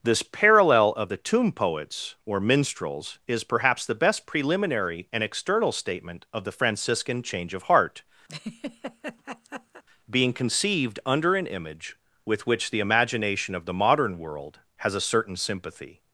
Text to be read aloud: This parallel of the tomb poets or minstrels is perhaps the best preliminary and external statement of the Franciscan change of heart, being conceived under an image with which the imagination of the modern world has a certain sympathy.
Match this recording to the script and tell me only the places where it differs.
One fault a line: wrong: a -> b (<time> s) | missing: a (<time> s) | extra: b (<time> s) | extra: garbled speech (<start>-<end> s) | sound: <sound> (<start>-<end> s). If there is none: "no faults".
sound: laugh (8.3-9.8 s)